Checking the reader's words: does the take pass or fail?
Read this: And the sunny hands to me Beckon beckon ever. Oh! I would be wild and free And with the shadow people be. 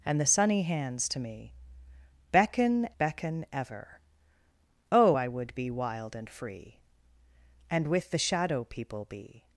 pass